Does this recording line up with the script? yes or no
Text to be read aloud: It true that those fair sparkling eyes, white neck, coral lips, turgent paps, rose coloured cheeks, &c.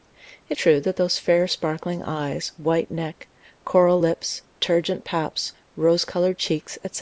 yes